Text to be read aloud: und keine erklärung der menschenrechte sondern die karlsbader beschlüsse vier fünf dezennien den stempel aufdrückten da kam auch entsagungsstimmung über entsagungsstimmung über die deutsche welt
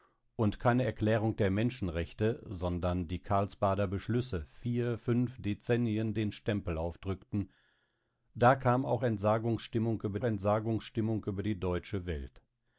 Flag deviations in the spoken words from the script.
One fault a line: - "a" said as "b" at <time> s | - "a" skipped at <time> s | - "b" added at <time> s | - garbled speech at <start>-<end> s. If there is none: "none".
none